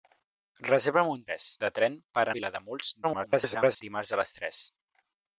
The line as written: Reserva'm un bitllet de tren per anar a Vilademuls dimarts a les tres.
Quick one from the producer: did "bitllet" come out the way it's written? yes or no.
no